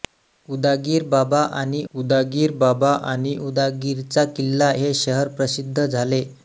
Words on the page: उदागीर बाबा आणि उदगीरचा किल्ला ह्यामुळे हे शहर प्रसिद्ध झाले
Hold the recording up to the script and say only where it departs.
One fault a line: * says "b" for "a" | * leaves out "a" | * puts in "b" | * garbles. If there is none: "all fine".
* puts in "उदागीर बाबा आणि"
* leaves out "ह्यामुळे"